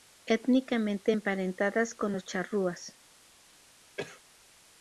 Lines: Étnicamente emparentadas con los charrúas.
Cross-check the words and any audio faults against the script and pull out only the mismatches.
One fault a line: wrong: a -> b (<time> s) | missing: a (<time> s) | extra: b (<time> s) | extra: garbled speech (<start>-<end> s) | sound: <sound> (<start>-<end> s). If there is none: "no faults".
sound: cough (4.0-4.2 s)